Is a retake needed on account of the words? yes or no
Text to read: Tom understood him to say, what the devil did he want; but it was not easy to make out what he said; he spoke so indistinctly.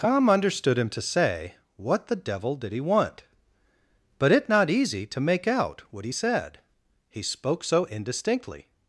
yes